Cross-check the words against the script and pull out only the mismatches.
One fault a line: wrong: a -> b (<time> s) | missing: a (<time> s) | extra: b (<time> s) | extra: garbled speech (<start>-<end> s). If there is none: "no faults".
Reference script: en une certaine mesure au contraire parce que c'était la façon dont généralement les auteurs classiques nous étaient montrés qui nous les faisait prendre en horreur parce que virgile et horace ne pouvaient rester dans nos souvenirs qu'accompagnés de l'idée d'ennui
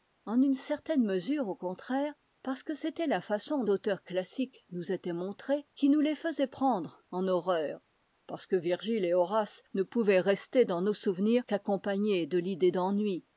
missing: dont généralement les (3.6 s)